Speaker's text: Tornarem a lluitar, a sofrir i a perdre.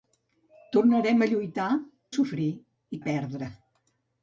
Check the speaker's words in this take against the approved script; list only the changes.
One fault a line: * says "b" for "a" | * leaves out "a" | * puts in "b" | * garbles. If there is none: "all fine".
all fine